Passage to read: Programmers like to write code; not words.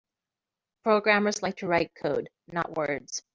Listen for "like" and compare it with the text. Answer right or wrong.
right